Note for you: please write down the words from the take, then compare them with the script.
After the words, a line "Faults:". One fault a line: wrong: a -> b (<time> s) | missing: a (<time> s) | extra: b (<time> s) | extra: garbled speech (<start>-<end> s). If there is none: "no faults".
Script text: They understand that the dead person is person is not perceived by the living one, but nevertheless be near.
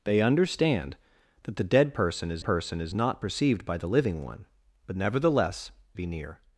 They understand that the dead person is person is not perceived by the living one, but nevertheless be near.
Faults:
no faults